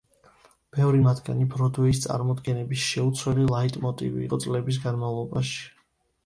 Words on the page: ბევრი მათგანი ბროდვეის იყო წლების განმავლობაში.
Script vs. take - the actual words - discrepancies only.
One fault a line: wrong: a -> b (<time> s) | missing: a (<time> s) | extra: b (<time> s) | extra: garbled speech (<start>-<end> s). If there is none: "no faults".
extra: წარმოდგენების შეუცვლელი ლაიტმოტივი (2.0 s)